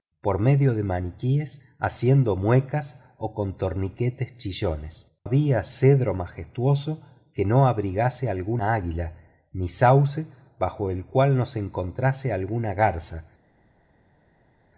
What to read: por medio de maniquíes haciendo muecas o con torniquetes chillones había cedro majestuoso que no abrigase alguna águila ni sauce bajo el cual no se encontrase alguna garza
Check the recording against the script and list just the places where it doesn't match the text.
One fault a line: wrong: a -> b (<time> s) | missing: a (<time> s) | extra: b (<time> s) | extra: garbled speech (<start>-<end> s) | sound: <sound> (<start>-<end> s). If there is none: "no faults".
no faults